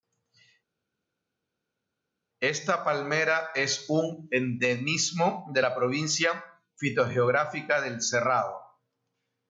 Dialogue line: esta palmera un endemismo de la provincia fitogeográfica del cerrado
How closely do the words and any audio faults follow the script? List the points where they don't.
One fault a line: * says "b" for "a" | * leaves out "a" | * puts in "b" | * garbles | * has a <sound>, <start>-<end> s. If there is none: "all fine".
* puts in "es"